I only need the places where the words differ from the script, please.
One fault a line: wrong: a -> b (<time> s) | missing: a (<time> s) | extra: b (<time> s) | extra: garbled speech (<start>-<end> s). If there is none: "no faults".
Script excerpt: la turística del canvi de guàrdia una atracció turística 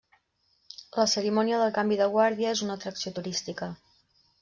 wrong: turística -> cerimònia (1.1 s)
extra: és (2.6 s)